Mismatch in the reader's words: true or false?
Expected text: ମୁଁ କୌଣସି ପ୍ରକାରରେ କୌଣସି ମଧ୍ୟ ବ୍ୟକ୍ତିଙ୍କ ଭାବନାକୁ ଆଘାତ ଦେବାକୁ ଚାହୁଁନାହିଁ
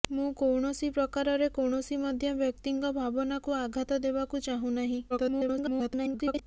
true